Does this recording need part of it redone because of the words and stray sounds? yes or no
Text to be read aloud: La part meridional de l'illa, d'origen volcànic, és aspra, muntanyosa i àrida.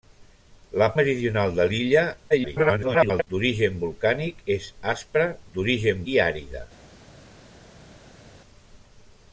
yes